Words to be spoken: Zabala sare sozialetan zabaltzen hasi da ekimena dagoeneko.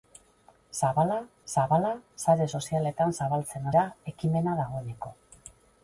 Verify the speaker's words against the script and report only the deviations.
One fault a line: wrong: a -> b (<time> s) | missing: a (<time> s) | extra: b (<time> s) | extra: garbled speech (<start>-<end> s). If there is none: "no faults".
extra: zabala (1.5 s)
missing: hasi (3.7 s)